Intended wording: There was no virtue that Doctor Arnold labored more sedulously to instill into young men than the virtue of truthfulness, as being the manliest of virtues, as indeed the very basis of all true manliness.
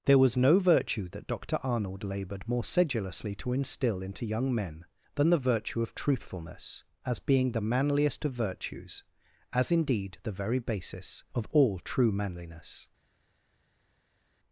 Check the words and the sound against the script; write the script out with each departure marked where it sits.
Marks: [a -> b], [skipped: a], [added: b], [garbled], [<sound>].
There was no virtue that Doctor Arnold labored more sedulously to instill into young men than the virtue of truthfulness, as being the manliest of virtues, as indeed the very basis of all true manliness.